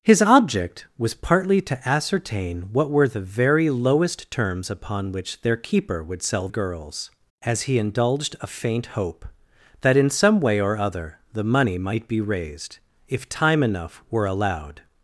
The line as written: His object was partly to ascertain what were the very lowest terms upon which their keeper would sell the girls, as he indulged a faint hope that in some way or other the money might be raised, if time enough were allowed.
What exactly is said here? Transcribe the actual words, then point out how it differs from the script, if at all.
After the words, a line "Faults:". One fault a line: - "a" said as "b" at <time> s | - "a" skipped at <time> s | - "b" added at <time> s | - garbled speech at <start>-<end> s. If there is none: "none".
His object was partly to ascertain what were the very lowest terms upon which their keeper would sell girls, as he indulged a faint hope that in some way or other the money might be raised, if time enough were allowed.
Faults:
- "the" skipped at 6.5 s